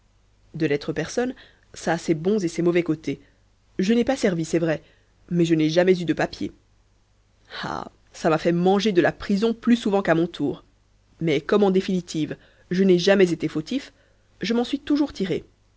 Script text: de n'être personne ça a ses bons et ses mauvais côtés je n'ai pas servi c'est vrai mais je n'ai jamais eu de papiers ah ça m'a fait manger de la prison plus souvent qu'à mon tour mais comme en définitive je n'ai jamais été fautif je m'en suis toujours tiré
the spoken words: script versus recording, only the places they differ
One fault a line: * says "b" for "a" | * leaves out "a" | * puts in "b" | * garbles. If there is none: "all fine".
all fine